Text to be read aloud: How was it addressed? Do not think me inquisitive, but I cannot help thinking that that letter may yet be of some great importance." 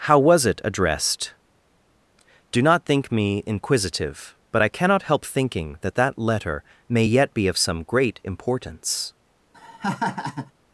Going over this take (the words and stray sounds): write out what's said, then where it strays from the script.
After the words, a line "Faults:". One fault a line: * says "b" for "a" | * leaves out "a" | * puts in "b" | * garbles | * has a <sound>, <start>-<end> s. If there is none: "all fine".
How was it addressed? Do not think me inquisitive, but I cannot help thinking that that letter may yet be of some great importance."
Faults:
* has a laugh, 9.5-10.5 s